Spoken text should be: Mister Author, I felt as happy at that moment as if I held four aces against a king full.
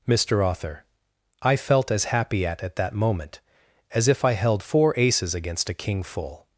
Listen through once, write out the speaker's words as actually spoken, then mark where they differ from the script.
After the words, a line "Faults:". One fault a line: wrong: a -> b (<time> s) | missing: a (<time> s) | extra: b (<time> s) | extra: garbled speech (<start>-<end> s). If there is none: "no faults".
Mister Author, I felt as happy at at that moment as if I held four aces against a king full.
Faults:
extra: at (2.6 s)